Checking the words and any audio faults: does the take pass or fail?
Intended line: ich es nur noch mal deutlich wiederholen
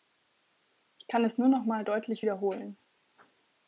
fail